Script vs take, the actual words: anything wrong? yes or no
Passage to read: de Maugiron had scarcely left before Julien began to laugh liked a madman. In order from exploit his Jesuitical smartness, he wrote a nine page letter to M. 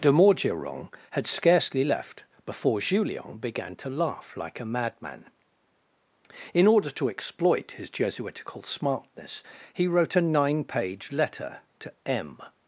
yes